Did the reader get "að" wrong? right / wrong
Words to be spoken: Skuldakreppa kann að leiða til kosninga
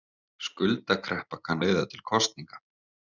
wrong